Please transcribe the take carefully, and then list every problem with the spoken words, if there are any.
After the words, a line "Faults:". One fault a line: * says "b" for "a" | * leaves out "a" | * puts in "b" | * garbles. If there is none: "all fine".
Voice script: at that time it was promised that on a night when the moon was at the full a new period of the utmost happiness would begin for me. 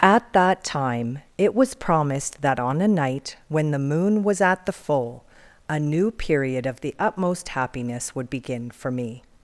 at that time it was promised that on a night when the moon was at the full a new period of the utmost happiness would begin for me.
Faults:
all fine